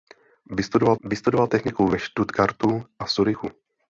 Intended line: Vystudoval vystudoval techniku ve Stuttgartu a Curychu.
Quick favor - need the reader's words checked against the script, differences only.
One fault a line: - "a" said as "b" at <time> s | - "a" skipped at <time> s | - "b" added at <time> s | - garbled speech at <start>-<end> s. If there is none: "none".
none